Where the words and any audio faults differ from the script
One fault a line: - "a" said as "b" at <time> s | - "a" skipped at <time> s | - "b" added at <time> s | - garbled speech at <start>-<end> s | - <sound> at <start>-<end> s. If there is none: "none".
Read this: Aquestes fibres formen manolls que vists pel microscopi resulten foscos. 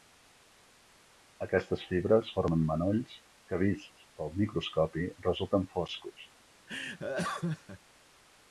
- laugh at 6.7-7.8 s